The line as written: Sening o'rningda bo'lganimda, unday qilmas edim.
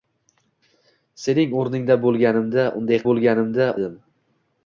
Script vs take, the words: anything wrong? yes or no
yes